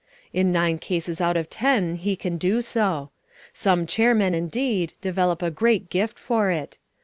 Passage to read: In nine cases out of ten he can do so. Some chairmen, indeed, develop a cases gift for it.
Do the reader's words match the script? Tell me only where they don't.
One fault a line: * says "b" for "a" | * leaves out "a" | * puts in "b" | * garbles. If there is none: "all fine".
* says "great" for "cases"